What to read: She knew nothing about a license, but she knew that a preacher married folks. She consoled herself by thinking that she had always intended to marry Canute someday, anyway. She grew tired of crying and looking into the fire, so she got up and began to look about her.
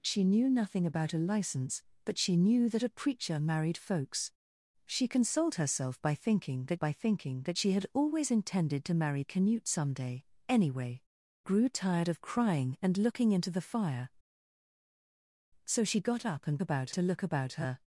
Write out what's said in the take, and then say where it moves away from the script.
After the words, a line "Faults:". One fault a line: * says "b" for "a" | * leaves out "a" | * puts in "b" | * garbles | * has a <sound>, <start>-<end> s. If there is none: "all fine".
She knew nothing about a license, but she knew that a preacher married folks. She consoled herself by thinking that by thinking that she had always intended to marry Canute someday, anyway. Grew tired of crying and looking into the fire, so she got up and about to look about her.
Faults:
* puts in "by thinking that"
* leaves out "She"
* says "about" for "began"